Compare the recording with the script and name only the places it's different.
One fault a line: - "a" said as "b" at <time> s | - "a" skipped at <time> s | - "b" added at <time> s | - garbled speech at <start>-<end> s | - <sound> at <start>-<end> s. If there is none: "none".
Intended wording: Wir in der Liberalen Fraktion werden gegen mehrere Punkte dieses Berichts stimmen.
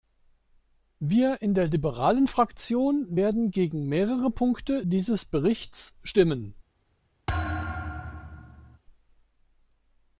- thud at 7.3-8.8 s